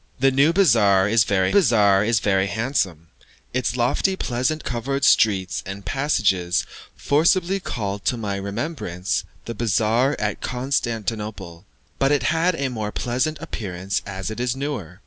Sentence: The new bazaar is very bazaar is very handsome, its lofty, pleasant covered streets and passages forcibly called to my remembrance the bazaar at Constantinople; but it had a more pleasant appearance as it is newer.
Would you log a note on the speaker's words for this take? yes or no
no